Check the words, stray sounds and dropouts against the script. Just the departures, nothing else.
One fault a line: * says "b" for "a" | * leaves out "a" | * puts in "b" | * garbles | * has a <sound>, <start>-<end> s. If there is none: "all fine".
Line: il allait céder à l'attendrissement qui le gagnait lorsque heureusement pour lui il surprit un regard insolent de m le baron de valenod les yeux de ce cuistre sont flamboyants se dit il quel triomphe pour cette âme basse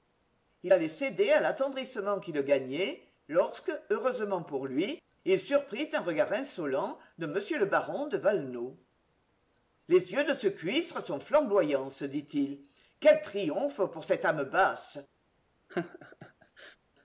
* has a laugh, 15.7-16.8 s